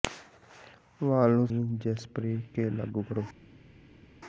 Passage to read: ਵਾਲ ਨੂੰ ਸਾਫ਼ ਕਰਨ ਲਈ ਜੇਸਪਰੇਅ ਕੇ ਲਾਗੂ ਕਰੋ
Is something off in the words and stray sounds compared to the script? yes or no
yes